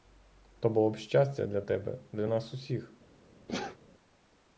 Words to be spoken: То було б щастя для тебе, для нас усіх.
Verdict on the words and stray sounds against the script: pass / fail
fail